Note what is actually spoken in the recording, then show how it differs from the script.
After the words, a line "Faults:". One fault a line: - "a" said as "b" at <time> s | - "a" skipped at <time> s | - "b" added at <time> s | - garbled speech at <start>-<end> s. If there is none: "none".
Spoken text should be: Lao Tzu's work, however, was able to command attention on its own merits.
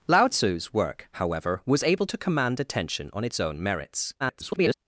Lao Tzu's work, however, was able to command attention on its own merits. [garbled]
Faults:
- garbled speech at 4.2-4.7 s